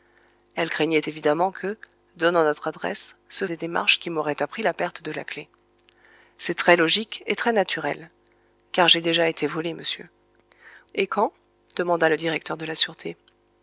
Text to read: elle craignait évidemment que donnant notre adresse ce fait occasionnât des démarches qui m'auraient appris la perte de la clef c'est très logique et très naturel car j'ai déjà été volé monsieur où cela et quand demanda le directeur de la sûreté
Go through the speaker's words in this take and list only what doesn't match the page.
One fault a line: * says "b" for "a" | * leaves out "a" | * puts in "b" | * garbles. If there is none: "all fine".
* leaves out "fait occasionnât"
* leaves out "où cela"